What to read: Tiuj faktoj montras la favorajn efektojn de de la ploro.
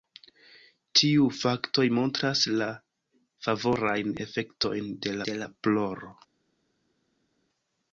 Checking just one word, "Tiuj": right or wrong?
right